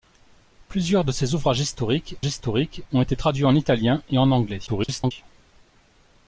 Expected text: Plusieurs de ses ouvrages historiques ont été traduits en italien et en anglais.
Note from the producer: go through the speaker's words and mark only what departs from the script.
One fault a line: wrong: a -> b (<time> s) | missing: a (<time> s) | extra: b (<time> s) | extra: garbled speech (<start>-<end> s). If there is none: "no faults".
extra: historiques (2.2 s)
extra: garbled speech (4.7-5.1 s)